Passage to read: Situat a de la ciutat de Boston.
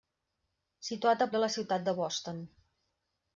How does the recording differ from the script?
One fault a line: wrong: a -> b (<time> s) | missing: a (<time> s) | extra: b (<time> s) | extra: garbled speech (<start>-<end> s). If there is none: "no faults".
no faults